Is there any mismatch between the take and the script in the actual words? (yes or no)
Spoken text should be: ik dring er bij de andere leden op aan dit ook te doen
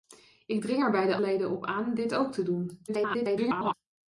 yes